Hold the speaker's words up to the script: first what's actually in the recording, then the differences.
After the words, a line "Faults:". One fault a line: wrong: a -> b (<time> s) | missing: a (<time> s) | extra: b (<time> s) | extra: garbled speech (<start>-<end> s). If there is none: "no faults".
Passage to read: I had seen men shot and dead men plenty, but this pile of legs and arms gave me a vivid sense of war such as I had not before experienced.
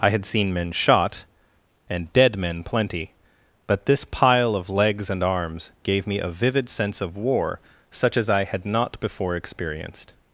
I had seen men shot and dead men plenty, but this pile of legs and arms gave me a vivid sense of war such as I had not before experienced.
Faults:
no faults